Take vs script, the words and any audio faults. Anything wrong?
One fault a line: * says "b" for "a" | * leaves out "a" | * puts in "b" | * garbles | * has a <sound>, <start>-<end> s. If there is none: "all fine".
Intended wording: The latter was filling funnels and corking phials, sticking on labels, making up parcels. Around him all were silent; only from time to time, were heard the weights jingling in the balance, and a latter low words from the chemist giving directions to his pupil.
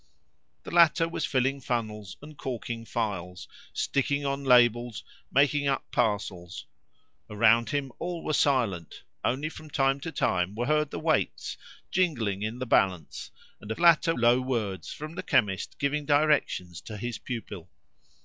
all fine